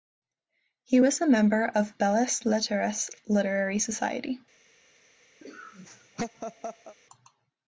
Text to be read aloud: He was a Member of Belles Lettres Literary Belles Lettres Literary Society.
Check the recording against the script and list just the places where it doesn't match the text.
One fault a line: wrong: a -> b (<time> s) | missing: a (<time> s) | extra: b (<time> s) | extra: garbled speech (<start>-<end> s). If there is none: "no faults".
missing: Belles Lettres Literary (3.8 s)